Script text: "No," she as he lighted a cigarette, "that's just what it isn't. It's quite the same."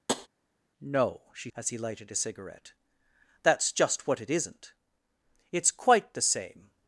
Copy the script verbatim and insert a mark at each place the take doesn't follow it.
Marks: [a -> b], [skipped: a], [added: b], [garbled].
"No," she as he lighted a cigarette, "that's just what it isn't. It's quite the same."